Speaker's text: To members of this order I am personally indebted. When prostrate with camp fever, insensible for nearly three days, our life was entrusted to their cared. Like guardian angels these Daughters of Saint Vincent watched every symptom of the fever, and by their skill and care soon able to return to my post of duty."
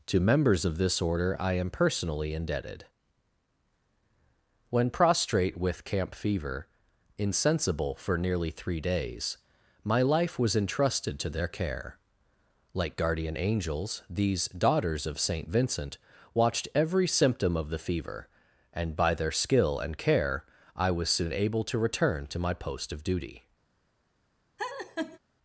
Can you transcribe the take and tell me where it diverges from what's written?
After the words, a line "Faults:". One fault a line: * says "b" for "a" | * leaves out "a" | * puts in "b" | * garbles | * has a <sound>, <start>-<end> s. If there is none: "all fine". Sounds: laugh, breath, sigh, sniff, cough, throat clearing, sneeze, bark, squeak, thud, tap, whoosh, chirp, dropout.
To members of this order I am personally indebted. When prostrate with camp fever, insensible for nearly three days, my life was entrusted to their care. Like guardian angels these Daughters of Saint Vincent watched every symptom of the fever, and by their skill and care I was soon able to return to my post of duty."
Faults:
* says "my" for "our"
* says "care" for "cared"
* puts in "I was"
* has a laugh, 24.6-25.2 s